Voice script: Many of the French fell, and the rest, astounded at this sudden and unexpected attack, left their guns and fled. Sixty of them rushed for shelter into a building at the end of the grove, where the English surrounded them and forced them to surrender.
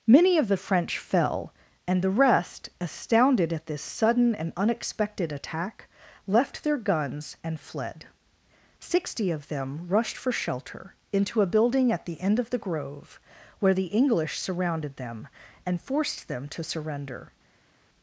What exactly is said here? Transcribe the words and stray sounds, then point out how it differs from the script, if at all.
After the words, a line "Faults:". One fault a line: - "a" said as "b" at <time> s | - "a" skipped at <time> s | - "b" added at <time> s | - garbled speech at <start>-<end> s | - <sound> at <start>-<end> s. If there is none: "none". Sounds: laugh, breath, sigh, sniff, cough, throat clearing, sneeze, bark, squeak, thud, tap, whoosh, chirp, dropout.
Many of the French fell, and the rest, astounded at this sudden and unexpected attack, left their guns and fled. Sixty of them rushed for shelter into a building at the end of the grove, where the English surrounded them and forced them to surrender.
Faults:
none